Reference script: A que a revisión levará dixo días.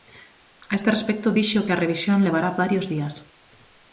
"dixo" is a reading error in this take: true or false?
true